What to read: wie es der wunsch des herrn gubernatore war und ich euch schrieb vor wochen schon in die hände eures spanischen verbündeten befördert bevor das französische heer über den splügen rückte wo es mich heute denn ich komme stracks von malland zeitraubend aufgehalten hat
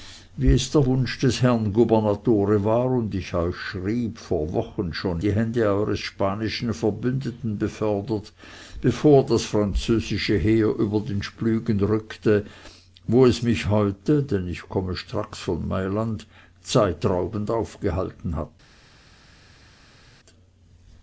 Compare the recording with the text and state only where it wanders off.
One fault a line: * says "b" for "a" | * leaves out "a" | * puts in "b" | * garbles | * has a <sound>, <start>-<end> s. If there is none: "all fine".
* leaves out "in"